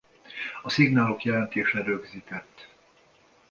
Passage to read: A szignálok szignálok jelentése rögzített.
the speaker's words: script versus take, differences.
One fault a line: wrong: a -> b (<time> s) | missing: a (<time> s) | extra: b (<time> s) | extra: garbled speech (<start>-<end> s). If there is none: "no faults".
missing: szignálok (1.2 s)